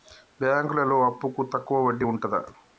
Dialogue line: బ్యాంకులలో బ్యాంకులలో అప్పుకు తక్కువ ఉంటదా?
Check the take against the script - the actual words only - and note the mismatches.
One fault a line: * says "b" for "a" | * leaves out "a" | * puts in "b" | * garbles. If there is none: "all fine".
* leaves out "బ్యాంకులలో"
* puts in "వడ్డీ"